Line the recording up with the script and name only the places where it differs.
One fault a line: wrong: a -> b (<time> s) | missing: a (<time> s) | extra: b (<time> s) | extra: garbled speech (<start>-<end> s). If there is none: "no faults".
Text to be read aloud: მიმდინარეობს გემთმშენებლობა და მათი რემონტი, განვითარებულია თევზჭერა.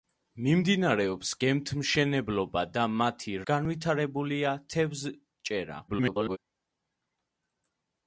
missing: რემონტი (3.3 s)
extra: garbled speech (5.9-6.4 s)